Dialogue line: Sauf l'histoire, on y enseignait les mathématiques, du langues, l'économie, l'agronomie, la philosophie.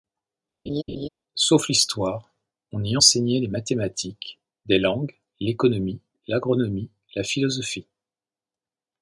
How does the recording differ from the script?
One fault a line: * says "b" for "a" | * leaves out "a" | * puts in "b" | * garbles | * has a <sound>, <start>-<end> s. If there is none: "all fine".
* has a laugh, 0.7-1.1 s
* says "des" for "du"